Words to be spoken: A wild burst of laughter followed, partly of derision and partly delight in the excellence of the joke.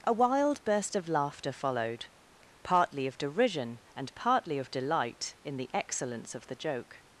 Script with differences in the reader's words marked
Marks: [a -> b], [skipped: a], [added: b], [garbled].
A wild burst of laughter followed, partly of derision and partly [added: of] delight in the excellence of the joke.